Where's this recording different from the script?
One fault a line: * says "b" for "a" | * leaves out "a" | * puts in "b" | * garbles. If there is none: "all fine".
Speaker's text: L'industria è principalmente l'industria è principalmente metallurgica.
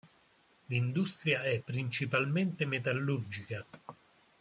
* leaves out "l'industria è principalmente"